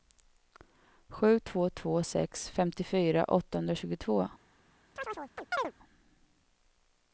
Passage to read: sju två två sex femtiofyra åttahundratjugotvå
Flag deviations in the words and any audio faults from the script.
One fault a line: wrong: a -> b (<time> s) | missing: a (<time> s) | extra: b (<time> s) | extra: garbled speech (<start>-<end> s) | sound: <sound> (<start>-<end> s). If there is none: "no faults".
sound: chirp (5.0-5.7 s)